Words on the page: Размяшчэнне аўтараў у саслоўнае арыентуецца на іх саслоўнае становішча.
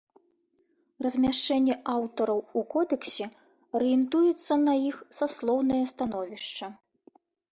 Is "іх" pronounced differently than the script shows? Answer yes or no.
no